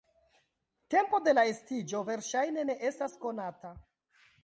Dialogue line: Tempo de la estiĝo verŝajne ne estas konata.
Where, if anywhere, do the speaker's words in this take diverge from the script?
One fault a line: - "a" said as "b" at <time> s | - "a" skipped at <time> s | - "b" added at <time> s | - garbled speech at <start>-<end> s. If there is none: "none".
none